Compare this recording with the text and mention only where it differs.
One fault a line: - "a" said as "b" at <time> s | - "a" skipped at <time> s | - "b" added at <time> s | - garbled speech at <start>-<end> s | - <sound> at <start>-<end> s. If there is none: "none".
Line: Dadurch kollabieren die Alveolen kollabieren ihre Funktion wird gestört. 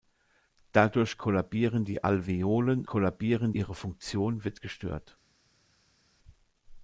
none